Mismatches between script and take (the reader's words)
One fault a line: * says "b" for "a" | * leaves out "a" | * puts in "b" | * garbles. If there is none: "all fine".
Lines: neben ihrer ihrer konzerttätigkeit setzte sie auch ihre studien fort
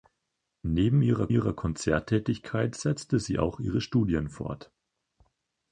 all fine